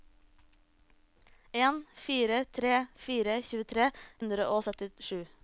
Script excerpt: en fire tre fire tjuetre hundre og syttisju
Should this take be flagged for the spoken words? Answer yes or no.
no